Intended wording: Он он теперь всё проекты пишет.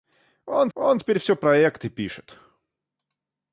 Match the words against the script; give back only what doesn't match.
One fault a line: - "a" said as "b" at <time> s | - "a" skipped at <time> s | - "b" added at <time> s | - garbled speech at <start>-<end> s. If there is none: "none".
none